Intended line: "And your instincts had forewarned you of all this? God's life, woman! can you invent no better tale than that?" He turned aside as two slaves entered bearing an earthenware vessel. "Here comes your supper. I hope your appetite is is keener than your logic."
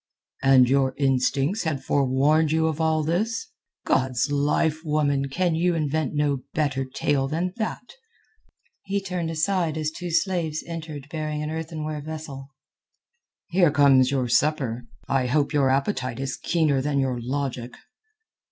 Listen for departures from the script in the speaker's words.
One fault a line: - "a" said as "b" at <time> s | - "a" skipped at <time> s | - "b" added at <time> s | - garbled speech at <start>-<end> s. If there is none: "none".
- "is" skipped at 16.4 s